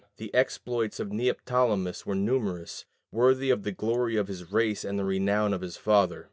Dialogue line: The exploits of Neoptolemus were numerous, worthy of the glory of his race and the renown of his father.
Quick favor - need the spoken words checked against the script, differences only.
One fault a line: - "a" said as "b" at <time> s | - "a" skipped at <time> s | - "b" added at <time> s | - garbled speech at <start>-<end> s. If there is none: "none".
none